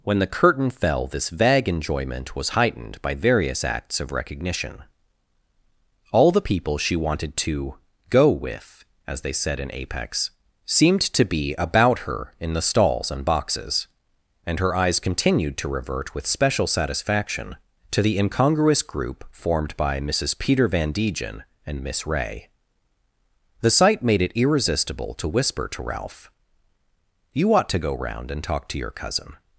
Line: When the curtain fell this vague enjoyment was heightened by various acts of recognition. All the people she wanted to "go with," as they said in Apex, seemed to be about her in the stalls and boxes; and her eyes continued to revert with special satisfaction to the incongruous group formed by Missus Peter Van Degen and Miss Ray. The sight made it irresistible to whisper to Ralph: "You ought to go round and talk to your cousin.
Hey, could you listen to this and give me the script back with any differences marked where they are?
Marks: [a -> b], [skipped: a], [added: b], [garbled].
When the curtain fell this vague enjoyment was heightened by various acts of recognition. All the people she wanted to "go with," as they said in Apex, seemed to be about her in the stalls and boxes; and her eyes continued to revert with special satisfaction to the incongruous group formed by Missus Peter Van Degen and Miss Ray. The sight made it irresistible to whisper to Ralph: "You ought to go round and talk to your cousin.